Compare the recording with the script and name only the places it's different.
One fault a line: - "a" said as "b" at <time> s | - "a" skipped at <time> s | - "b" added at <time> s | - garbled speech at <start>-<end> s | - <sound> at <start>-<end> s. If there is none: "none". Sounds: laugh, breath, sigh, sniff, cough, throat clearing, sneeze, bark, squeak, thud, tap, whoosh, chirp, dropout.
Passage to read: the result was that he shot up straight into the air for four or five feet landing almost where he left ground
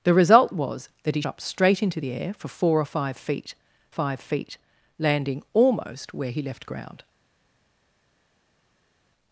- "shot" skipped at 1.2 s
- "five feet" added at 3.9 s